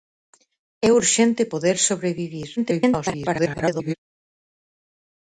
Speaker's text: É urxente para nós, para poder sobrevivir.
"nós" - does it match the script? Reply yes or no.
no